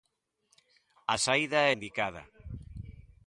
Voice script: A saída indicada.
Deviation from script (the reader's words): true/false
false